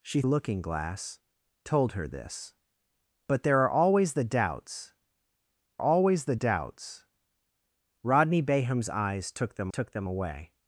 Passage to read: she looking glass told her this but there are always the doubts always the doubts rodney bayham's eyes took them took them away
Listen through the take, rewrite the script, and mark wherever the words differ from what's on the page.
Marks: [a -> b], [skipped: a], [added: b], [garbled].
she looking glass told her this but there are always the doubts always the doubts rodney bayham's eyes took them took them away